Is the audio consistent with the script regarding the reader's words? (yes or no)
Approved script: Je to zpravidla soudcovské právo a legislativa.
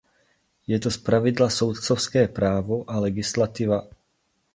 yes